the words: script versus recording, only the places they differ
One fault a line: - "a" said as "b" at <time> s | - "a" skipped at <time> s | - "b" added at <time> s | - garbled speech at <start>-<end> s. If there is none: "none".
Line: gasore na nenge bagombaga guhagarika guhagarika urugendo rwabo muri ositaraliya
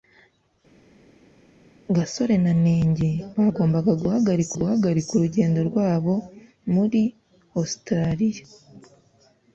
none